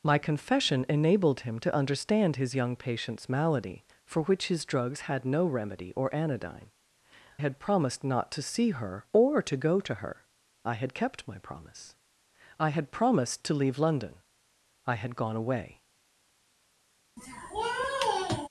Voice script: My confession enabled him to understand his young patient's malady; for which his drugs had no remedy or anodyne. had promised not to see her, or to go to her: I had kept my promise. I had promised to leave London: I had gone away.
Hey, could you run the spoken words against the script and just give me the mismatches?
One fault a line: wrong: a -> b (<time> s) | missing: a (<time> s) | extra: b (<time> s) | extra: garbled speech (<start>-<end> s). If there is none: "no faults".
no faults